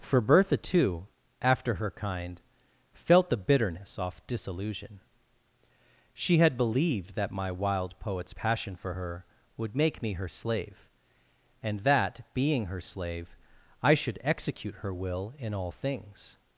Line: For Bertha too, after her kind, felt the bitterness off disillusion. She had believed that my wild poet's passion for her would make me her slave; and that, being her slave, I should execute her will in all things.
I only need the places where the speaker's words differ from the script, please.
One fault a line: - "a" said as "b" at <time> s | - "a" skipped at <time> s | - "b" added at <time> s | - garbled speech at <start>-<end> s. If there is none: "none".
none